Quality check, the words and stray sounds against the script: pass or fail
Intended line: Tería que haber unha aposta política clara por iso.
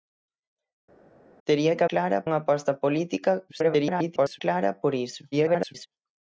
fail